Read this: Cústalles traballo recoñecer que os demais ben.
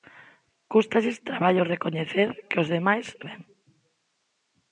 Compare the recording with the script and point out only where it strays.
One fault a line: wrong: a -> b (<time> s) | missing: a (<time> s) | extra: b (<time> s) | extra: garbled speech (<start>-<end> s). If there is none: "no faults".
no faults